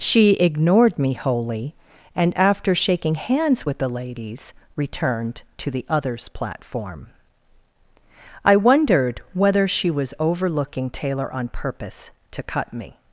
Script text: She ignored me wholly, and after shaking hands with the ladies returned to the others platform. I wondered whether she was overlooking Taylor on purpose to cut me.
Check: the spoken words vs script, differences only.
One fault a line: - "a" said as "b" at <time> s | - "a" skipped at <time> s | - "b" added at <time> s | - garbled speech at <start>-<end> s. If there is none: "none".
none